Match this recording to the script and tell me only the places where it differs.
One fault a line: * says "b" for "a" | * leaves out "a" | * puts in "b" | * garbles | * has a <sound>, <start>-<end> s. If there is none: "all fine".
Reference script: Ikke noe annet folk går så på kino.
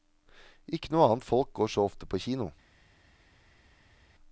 * puts in "ofte"